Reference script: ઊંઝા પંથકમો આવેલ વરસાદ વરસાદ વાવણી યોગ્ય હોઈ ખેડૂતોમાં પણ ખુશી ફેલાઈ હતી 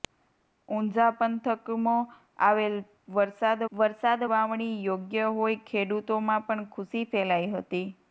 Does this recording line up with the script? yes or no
yes